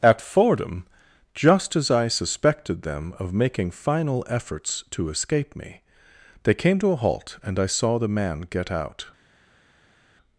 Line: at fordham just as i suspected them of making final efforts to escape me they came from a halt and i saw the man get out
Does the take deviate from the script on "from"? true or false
true